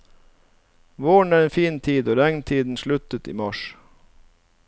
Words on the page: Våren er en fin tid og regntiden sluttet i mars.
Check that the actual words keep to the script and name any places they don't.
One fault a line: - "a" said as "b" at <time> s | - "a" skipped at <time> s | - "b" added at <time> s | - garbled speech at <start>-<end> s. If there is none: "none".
none